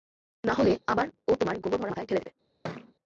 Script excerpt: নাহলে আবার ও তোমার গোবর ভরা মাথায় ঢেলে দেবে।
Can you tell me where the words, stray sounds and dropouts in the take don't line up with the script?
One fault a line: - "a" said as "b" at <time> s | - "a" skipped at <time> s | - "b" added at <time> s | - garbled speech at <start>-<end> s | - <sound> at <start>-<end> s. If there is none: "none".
- thud at 2.6-2.9 s